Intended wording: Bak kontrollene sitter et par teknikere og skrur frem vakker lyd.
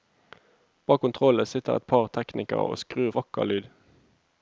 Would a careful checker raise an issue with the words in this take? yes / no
yes